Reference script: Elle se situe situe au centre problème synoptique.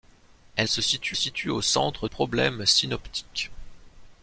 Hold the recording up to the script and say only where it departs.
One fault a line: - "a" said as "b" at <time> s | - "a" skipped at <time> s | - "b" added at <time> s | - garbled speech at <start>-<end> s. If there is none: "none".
none